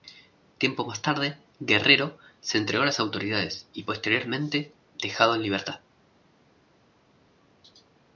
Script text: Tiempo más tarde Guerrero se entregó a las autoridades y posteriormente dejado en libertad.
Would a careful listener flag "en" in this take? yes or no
no